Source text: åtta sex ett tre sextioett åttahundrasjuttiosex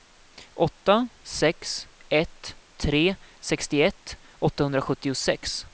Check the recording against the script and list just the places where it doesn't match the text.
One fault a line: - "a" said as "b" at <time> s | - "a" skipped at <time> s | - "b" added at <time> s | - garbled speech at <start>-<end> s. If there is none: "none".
none